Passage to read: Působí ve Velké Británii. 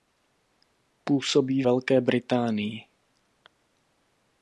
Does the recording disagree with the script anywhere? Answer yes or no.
yes